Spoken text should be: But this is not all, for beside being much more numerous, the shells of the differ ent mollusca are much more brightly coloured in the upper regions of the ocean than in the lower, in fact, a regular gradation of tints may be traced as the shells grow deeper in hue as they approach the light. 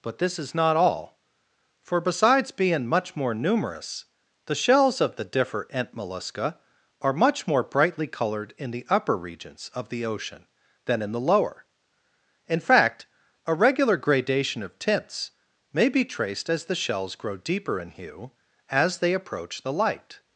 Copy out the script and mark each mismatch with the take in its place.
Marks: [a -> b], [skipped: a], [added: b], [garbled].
But this is not all, for [beside -> besides] being much more numerous, the shells of the differ ent mollusca are much more brightly coloured in the upper regions of the ocean than in the lower, in fact, a regular gradation of tints may be traced as the shells grow deeper in hue as they approach the light.